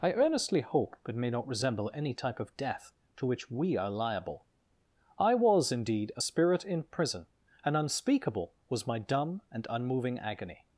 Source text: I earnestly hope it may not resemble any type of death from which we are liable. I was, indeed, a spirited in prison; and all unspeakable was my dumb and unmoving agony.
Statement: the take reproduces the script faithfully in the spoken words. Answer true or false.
false